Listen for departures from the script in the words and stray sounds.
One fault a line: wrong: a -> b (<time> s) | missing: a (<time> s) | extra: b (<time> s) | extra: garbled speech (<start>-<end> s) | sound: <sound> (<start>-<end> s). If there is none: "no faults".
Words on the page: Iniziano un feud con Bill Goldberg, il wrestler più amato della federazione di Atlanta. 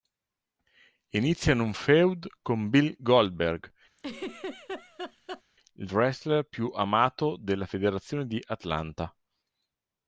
sound: laugh (4.0-5.4 s)